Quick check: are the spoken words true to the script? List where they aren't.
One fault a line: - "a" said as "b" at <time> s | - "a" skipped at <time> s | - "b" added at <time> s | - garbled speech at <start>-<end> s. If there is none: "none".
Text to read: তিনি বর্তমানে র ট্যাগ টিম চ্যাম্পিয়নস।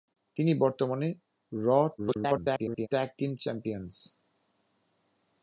- garbled speech at 2.0-2.9 s